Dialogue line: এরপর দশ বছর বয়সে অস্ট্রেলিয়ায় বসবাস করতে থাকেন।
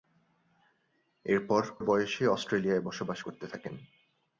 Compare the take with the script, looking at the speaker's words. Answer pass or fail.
fail